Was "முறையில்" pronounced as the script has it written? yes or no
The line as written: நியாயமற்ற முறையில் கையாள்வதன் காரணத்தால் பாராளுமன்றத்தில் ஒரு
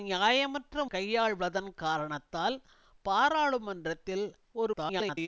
no